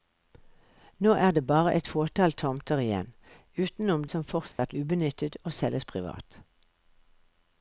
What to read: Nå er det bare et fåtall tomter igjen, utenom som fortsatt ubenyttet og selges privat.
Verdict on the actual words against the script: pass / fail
pass